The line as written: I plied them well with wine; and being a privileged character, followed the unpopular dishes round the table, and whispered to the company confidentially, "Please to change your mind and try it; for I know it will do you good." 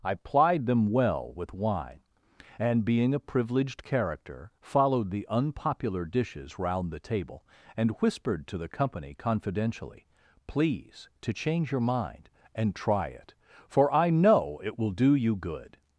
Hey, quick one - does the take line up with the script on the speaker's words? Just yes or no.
yes